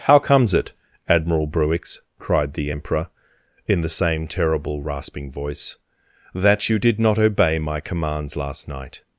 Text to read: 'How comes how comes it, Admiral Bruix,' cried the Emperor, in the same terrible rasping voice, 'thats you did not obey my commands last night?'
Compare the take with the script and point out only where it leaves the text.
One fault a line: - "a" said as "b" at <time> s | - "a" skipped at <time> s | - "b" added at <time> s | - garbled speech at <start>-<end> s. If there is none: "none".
- "how comes" skipped at 0.6 s
- "thats" said as "that" at 6.3 s